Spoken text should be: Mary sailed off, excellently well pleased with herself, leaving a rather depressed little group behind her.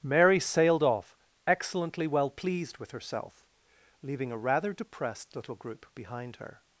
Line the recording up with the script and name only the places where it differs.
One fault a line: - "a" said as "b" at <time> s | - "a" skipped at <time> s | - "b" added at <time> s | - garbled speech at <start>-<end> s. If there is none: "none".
none